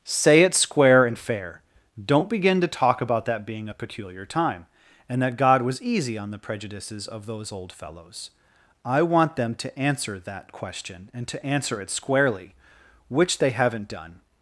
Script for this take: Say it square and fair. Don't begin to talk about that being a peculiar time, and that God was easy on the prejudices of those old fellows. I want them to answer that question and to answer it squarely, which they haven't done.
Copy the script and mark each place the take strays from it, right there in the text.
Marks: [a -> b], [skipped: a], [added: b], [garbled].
Say it square and fair. Don't begin to talk about that being a peculiar time, and that God was easy on the prejudices of those old fellows. I want them to answer that question and to answer it squarely, which they haven't done.